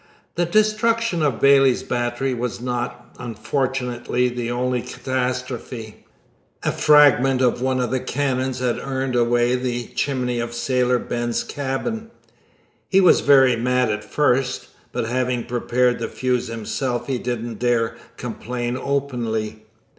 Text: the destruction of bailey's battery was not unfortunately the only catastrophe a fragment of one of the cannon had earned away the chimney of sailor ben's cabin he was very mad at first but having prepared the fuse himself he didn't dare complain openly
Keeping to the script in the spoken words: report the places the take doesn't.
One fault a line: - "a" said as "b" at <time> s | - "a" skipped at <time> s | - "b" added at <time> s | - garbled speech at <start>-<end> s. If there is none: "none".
none